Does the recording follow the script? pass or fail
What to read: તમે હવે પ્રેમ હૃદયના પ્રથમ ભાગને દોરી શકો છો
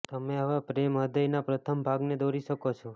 pass